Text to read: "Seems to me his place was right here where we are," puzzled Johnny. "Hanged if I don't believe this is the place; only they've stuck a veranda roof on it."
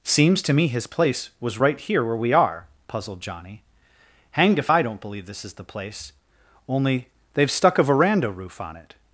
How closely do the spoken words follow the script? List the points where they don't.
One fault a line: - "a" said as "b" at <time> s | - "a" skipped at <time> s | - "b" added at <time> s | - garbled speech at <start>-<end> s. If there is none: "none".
none